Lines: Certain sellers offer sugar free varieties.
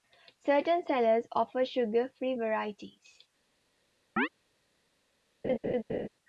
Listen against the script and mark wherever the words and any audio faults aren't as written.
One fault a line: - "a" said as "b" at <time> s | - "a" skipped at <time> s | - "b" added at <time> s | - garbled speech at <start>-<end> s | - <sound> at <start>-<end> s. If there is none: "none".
- chirp at 4.2-4.3 s
- laugh at 5.4-6.1 s